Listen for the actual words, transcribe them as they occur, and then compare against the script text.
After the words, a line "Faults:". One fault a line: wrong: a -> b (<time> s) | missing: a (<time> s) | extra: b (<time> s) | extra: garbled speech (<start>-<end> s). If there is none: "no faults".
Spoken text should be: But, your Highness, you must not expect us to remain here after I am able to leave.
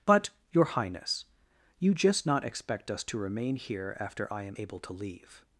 But, your Highness, you just not expect us to remain here after I am able to leave.
Faults:
wrong: must -> just (1.9 s)